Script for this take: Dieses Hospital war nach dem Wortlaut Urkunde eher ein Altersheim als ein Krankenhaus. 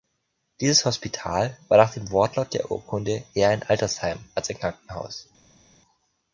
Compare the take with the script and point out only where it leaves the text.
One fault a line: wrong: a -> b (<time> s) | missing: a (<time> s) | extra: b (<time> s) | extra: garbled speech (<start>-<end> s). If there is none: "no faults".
extra: der (2.5 s)